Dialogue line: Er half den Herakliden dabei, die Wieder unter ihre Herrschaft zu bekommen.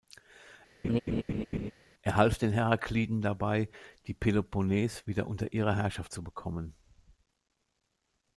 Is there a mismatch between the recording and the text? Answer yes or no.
yes